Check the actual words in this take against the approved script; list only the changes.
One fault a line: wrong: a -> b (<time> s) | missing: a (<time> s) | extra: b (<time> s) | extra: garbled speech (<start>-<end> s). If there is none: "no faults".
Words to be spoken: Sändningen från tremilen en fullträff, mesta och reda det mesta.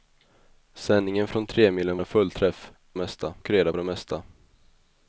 no faults